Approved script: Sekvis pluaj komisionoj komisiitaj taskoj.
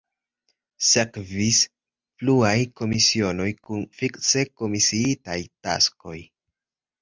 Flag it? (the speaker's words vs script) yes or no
yes